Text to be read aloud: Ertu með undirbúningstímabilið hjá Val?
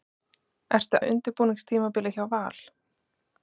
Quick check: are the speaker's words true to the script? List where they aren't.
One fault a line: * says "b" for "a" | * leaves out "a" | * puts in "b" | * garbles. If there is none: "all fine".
all fine